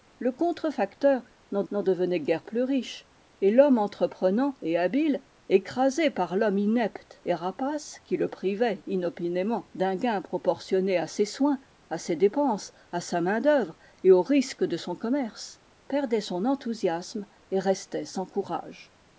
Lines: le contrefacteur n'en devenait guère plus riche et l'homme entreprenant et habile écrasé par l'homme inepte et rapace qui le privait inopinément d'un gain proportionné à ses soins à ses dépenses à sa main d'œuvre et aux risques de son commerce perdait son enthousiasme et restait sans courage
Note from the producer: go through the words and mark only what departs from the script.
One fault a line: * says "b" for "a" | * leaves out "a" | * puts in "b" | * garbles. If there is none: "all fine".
* puts in "n'en"